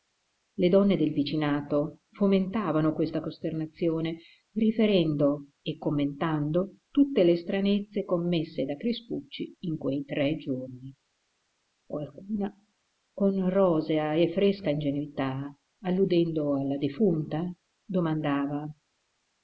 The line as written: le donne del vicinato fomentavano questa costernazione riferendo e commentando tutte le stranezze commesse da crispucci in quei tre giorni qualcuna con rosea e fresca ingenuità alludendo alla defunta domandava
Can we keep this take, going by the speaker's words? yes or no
yes